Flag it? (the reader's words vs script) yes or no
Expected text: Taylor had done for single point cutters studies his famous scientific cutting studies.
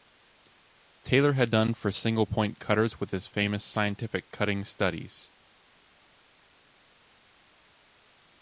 yes